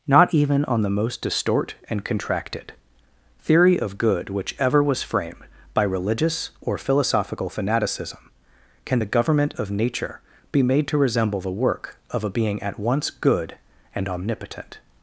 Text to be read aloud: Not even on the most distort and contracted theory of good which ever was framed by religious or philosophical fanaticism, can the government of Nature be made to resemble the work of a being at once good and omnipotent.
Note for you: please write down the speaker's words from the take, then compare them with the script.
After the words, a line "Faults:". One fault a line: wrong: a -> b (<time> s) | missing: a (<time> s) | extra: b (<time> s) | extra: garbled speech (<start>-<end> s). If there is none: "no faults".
Not even on the most distort and contracted theory of good which ever was framed by religious or philosophical fanaticism, can the government of Nature be made to resemble the work of a being at once good and omnipotent.
Faults:
no faults